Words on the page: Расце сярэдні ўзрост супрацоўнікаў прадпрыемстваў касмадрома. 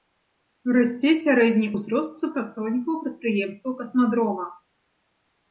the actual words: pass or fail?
pass